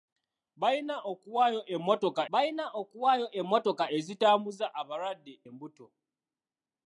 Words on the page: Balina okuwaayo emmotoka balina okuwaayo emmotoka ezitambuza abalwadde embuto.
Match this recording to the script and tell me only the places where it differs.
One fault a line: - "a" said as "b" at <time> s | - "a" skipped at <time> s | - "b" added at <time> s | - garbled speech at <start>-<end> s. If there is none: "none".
none